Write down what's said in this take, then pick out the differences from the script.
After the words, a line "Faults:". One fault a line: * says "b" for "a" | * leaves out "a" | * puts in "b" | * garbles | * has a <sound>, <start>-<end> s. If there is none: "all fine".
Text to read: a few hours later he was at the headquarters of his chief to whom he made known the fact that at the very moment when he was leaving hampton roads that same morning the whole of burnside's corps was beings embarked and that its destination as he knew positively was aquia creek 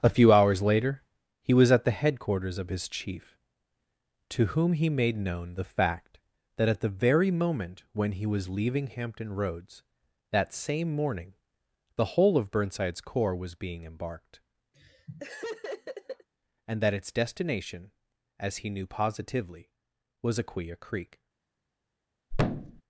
a few hours later he was at the headquarters of his chief to whom he made known the fact that at the very moment when he was leaving hampton roads that same morning the whole of burnside's corps was being embarked and that its destination as he knew positively was aquia creek
Faults:
* says "being" for "beings"
* has a laugh, 14.7-16.3 s
* has a thud, 22.3-22.8 s